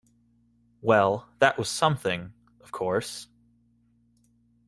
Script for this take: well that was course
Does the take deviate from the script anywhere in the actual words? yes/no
yes